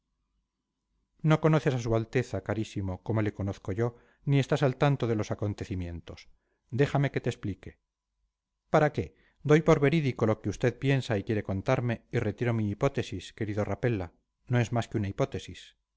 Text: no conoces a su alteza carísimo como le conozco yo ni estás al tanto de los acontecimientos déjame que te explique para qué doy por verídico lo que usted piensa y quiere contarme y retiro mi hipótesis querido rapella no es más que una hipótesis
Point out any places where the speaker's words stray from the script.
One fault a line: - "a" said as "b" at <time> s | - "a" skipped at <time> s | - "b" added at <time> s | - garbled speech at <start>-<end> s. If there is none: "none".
none